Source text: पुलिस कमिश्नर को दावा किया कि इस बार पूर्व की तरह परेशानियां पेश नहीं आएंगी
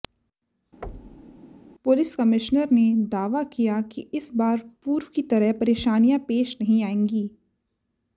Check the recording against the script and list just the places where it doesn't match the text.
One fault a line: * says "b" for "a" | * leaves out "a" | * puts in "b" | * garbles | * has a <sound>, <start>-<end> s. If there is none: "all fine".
* has a thud, 0.8-1.4 s
* says "ने" for "को"